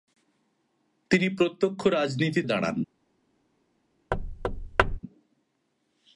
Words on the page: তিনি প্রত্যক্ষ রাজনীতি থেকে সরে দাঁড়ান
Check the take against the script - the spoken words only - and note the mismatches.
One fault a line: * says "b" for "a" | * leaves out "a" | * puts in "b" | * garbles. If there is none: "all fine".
* leaves out "থেকে সরে"